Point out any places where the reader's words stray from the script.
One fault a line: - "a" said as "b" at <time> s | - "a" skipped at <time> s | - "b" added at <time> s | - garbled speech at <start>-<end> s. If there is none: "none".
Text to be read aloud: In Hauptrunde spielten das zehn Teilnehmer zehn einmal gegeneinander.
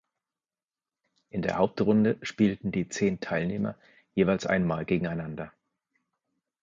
- "der" added at 1.4 s
- "das" said as "die" at 2.7 s
- "zehn" said as "jeweils" at 4.2 s